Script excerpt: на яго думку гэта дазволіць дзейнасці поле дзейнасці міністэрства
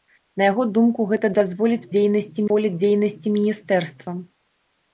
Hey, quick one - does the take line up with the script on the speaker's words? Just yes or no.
yes